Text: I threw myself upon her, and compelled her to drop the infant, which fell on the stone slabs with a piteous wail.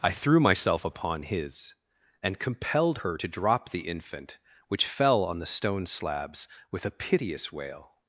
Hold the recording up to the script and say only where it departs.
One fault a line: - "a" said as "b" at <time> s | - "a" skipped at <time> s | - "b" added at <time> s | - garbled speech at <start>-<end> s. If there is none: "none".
- "her" said as "his" at 1.2 s